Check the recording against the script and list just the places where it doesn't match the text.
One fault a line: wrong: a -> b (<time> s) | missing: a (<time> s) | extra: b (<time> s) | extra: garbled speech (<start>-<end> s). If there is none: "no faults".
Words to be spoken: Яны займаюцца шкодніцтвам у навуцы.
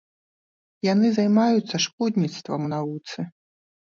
no faults